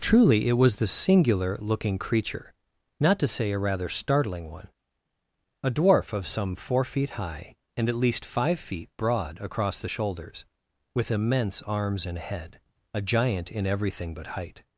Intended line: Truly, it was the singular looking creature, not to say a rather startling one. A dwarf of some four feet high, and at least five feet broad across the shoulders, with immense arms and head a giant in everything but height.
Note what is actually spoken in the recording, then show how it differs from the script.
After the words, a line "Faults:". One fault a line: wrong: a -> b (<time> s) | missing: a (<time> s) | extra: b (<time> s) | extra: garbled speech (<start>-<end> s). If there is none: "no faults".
Truly, it was the singular looking creature, not to say a rather startling one. A dwarf of some four feet high, and at least five feet broad across the shoulders, with immense arms and head a giant in everything but height.
Faults:
no faults